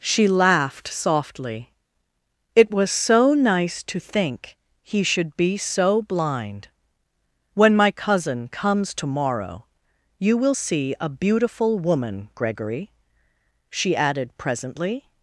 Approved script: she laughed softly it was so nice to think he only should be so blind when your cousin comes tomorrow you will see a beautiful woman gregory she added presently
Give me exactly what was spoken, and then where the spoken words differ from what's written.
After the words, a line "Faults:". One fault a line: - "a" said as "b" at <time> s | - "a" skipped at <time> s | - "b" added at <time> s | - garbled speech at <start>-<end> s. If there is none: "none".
she laughed softly it was so nice to think he should be so blind when my cousin comes tomorrow you will see a beautiful woman gregory she added presently
Faults:
- "only" skipped at 5.0 s
- "your" said as "my" at 7.8 s